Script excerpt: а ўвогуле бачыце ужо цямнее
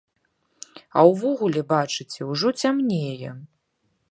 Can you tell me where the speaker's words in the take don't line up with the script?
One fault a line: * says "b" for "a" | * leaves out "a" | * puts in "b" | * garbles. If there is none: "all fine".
all fine